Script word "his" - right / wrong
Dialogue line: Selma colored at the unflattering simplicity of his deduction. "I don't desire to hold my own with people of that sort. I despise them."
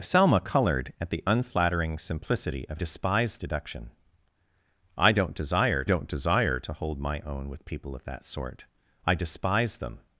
wrong